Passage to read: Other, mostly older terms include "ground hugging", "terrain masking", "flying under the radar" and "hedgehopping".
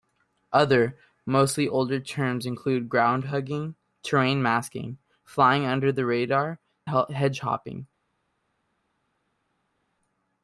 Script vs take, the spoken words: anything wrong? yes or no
yes